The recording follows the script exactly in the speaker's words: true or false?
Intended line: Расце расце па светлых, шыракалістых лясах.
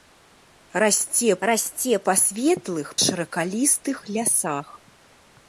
true